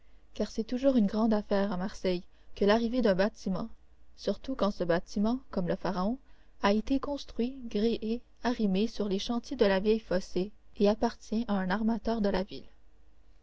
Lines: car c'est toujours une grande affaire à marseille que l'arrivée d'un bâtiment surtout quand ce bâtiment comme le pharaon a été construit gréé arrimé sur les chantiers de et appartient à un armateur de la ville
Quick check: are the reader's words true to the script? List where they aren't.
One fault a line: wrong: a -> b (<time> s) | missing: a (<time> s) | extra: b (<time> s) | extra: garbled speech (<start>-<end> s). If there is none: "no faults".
extra: la vieille phocée (9.6 s)